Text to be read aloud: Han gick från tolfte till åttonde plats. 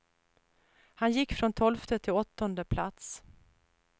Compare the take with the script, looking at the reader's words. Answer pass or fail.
pass